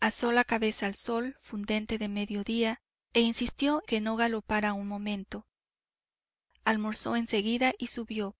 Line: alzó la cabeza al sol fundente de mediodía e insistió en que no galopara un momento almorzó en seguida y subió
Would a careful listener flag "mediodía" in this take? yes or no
no